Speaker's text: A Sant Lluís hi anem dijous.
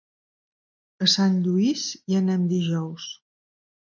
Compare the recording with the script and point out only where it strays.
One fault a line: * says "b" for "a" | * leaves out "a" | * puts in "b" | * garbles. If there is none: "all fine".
all fine